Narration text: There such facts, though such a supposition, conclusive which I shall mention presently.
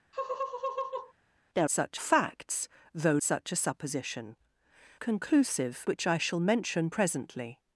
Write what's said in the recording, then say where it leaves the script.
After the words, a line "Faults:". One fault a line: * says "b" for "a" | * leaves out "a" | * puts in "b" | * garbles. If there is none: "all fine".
There such facts, though such a supposition, conclusive which I shall mention presently.
Faults:
all fine